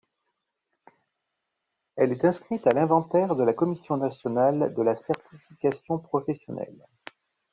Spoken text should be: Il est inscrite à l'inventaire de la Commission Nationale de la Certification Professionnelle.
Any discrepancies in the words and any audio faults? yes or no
yes